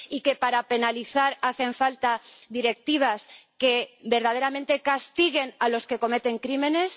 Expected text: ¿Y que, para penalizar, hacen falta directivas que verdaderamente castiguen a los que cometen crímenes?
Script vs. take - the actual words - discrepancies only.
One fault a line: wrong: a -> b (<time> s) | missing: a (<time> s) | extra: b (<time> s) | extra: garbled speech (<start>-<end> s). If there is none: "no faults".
no faults